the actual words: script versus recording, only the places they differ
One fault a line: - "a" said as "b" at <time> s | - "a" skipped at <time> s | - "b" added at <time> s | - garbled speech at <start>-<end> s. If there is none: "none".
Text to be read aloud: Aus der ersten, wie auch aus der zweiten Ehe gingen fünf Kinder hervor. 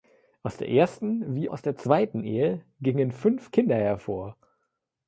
- "auch" skipped at 1.5 s